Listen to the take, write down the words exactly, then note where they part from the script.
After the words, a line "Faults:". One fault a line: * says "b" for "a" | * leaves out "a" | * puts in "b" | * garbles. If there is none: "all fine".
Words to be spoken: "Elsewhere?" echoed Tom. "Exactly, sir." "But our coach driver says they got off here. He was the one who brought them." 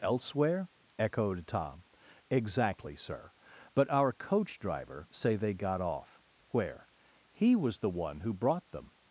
"Elsewhere?" echoed Tom. "Exactly, sir." "But our coach driver say they got off where. He was the one who brought them."
Faults:
* says "say" for "says"
* says "where" for "here"